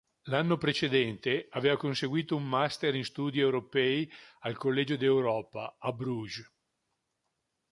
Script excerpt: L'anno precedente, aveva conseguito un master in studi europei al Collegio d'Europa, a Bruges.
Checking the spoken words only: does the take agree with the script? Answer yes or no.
yes